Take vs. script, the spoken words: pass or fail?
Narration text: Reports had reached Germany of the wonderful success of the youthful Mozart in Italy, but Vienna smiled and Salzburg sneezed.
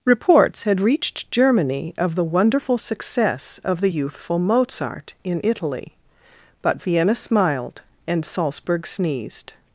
pass